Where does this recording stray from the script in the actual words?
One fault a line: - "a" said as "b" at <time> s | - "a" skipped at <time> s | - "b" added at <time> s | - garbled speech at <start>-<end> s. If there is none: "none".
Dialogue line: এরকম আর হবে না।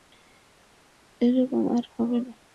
none